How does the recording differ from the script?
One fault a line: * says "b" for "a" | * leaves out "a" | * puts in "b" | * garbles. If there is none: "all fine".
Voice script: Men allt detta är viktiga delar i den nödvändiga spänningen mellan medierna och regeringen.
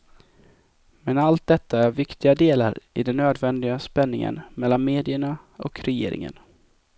all fine